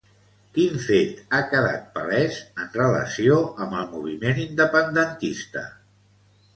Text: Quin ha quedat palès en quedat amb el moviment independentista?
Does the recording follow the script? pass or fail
fail